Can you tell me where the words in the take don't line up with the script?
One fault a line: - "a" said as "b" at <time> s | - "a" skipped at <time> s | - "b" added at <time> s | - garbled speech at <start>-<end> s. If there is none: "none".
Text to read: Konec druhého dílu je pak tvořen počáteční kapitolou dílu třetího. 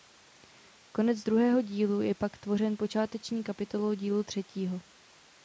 none